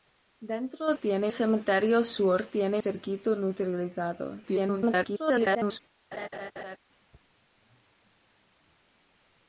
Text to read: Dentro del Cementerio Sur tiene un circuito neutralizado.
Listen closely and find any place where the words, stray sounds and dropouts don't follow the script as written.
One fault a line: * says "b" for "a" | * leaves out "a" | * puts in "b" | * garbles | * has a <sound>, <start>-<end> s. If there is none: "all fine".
* says "tiene" for "del"
* leaves out "un"
* garbles
* has a laugh, 6.1-6.8 s